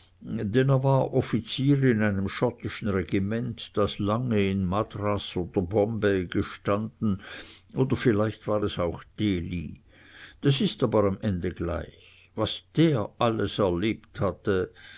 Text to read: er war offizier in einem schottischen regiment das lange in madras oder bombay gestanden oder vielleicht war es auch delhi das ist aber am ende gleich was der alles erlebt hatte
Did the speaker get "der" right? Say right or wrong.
right